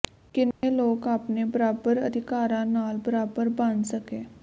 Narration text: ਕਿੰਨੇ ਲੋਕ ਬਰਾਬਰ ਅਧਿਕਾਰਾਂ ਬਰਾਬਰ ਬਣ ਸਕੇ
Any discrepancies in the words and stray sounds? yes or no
yes